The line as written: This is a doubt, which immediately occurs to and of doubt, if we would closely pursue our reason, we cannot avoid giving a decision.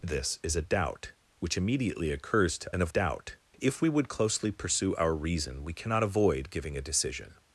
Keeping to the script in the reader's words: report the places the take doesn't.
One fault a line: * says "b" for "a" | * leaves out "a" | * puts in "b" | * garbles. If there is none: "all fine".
all fine